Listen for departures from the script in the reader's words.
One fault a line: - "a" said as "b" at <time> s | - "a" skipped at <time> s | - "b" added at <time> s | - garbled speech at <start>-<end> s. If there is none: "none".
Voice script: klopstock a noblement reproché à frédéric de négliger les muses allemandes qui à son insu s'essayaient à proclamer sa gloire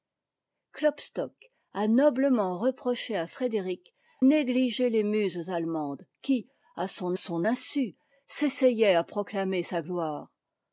- "de" skipped at 3.9 s
- "son" added at 7.1 s